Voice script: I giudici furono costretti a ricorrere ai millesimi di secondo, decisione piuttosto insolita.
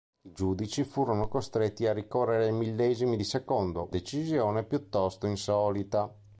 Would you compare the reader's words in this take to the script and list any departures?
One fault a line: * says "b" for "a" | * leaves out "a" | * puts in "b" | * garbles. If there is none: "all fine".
all fine